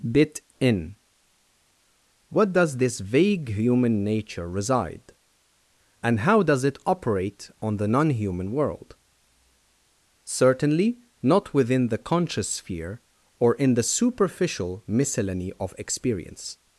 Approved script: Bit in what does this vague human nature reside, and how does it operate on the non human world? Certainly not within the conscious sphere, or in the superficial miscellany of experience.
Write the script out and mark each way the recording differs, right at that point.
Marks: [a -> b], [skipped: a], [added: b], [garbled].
Bit in what does this vague human nature reside, and how does it operate on the non human world? Certainly not within the conscious sphere, or in the superficial miscellany of experience.